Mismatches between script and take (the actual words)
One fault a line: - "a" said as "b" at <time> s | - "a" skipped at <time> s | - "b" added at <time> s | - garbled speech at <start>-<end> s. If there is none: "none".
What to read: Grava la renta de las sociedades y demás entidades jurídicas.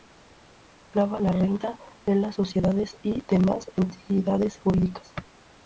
none